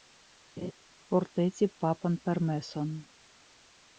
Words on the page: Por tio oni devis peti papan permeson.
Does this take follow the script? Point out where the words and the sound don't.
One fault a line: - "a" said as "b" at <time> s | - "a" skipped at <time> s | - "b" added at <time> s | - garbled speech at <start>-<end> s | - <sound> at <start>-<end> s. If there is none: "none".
- laugh at 0.6-0.7 s
- "tio oni devis" skipped at 1.2 s